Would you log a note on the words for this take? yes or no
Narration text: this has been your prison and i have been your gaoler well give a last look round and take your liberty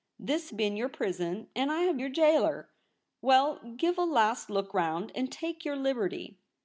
yes